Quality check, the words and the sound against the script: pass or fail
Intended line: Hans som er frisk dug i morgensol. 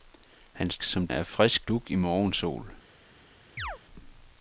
fail